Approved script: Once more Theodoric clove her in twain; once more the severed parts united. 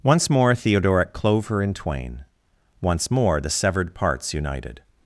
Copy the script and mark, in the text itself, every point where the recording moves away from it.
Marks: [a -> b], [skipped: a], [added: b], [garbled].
Once more Theodoric clove her in twain; once more the severed parts united.